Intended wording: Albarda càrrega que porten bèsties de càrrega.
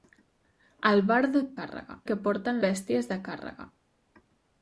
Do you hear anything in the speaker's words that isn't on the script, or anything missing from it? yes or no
no